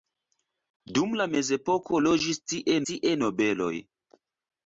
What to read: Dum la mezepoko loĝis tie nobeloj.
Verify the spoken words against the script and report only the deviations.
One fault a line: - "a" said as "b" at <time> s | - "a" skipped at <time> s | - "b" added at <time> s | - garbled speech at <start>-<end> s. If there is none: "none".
- "tie" added at 2.9 s